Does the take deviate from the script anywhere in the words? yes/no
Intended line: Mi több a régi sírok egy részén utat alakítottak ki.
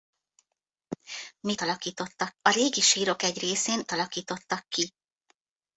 yes